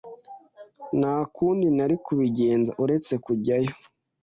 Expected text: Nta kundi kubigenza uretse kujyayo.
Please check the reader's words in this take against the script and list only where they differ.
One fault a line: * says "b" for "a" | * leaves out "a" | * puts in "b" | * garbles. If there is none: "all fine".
* puts in "nari"